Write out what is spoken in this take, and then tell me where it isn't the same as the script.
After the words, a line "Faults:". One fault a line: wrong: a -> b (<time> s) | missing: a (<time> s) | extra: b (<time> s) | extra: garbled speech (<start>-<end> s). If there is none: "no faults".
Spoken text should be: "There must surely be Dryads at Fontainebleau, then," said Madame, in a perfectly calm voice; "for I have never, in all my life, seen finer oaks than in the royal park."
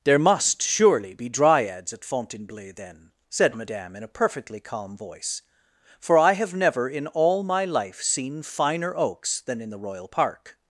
"There must surely be Dryads at Fontainebleau, then," said Madame, in a perfectly calm voice; "for I have never, in all my life, seen finer oaks than in the royal park."
Faults:
no faults